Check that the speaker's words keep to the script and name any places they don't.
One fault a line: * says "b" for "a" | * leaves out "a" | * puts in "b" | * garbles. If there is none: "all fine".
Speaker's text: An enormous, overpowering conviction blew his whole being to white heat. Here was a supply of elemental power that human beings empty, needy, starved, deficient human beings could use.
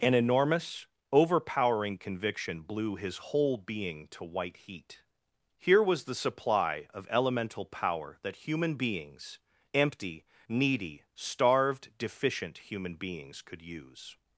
* says "the" for "a"